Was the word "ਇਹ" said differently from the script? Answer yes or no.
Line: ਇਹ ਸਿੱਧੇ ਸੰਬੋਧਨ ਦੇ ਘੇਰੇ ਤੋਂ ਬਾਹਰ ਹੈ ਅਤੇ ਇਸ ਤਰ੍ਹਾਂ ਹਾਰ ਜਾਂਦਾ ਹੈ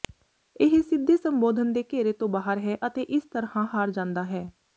no